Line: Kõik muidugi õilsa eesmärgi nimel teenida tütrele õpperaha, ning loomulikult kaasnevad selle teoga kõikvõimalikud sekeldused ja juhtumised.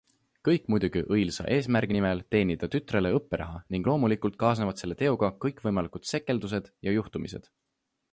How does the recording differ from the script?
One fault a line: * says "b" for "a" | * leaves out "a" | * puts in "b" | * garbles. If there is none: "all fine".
all fine